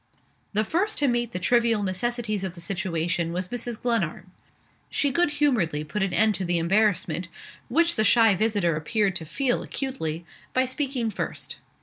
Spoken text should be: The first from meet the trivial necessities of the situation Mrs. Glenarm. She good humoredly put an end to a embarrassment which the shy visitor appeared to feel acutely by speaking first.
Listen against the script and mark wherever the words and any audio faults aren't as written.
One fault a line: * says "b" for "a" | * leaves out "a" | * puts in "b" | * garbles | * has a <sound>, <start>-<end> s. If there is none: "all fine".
* says "to" for "from"
* puts in "was"
* says "the" for "a"